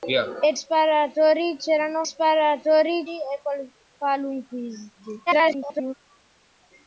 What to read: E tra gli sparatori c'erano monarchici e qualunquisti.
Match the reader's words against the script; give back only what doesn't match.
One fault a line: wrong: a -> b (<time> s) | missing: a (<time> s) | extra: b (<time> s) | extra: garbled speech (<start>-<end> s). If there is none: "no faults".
missing: tra gli (0.5 s)
wrong: monarchici -> sparatori (2.0 s)
extra: garbled speech (5.3-5.9 s)